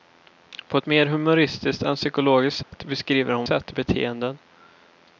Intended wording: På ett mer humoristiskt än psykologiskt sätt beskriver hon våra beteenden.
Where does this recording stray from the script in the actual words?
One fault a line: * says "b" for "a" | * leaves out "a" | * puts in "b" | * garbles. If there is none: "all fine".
* says "sätt" for "våra"